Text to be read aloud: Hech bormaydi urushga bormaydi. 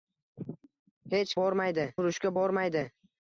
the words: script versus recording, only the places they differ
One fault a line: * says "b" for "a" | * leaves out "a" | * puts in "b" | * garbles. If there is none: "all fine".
all fine